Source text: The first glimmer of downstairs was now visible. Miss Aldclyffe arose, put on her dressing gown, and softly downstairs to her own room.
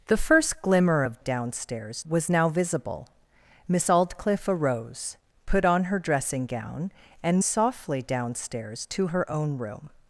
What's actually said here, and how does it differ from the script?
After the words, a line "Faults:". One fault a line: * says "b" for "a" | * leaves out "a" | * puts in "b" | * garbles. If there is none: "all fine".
The first glimmer of downstairs was now visible. Miss Aldclyffe arose, put on her dressing gown, and softly downstairs to her own room.
Faults:
all fine